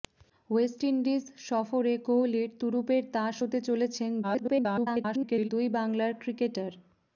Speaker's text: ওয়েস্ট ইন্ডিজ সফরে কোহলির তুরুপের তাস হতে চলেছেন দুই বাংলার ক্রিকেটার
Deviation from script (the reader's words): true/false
true